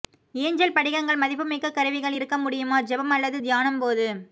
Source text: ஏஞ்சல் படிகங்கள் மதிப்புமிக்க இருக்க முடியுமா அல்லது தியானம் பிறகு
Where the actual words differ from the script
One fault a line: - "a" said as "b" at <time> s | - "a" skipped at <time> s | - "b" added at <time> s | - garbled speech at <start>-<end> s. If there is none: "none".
- "கருவிகள்" added at 1.7 s
- "ஜெபம்" added at 2.8 s
- "பிறகு" said as "போது" at 3.8 s